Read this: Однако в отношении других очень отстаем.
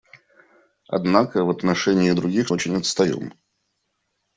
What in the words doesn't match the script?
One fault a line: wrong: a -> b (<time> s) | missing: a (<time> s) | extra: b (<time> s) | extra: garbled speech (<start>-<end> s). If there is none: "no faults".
no faults